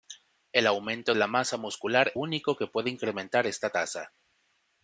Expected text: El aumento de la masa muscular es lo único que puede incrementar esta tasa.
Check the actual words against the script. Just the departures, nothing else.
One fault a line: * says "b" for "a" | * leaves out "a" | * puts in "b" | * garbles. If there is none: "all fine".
* leaves out "de"
* leaves out "es lo"